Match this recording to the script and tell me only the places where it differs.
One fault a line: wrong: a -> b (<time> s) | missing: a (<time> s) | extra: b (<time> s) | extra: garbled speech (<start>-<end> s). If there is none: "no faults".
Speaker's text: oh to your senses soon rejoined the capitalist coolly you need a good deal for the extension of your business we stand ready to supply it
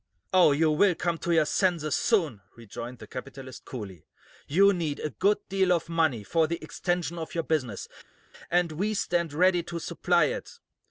extra: you will come (0.5 s)
extra: of money (5.7 s)
extra: and (8.5 s)